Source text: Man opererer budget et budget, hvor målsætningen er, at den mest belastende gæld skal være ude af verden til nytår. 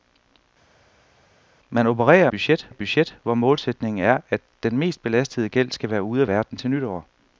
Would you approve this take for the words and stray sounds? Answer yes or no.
yes